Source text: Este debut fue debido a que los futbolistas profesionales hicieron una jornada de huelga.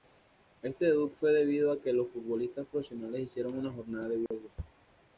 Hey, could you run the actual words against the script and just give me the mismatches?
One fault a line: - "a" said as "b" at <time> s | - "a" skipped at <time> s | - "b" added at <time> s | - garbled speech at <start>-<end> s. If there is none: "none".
none